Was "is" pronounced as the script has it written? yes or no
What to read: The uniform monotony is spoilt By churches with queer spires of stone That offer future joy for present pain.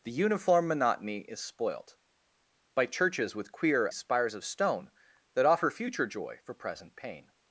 yes